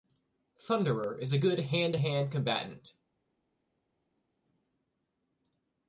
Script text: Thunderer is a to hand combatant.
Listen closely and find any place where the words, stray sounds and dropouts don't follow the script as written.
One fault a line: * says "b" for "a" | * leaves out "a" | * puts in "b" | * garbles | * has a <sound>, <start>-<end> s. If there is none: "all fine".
* puts in "good hand"